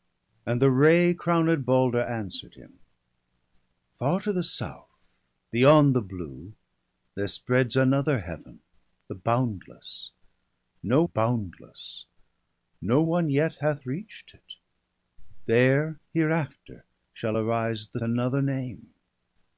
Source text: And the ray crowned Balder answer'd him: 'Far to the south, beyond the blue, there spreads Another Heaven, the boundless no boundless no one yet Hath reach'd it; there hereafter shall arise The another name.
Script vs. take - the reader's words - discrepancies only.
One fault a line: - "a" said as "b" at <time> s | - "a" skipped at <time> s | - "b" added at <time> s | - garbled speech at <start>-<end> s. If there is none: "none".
none